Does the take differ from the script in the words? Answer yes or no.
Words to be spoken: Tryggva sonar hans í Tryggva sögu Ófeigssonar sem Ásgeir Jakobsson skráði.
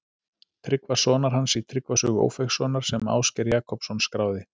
no